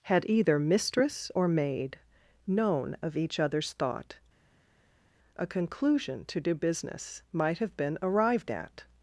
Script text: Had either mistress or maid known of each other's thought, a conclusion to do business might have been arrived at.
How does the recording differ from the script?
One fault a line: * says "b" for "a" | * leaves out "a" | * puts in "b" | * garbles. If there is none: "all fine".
all fine